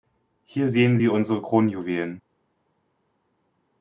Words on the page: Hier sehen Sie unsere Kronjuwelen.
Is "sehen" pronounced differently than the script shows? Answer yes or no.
no